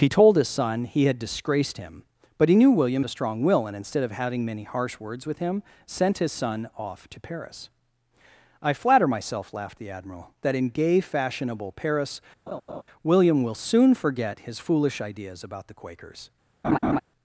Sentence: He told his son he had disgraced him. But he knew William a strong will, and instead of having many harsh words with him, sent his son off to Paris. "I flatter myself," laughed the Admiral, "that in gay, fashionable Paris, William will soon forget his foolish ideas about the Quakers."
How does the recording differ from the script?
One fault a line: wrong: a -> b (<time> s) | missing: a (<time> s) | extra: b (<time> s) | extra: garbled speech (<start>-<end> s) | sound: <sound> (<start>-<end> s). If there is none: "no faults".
sound: laugh (12.5-12.8 s)
sound: laugh (16.6-17.0 s)